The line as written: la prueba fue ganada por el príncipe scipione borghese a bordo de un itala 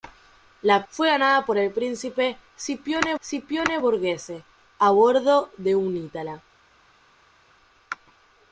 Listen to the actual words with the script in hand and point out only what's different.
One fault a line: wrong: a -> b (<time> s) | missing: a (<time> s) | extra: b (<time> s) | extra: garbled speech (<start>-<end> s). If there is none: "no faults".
missing: prueba (0.8 s)
extra: scipione (3.2 s)